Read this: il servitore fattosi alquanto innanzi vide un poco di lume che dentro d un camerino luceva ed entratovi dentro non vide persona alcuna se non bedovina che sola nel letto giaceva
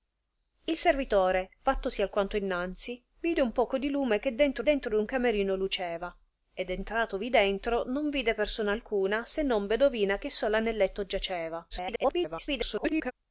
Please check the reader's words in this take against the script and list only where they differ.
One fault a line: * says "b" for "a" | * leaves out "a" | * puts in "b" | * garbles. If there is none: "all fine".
* puts in "dentro"
* garbles